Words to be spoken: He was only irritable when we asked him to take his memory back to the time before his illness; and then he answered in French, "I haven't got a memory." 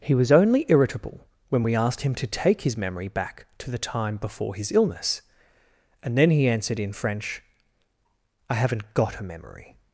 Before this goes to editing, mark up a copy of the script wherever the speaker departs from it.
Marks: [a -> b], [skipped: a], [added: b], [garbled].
He was only irritable when we asked him to take his memory back to the time before his illness; and then he answered in French, "I haven't got a memory."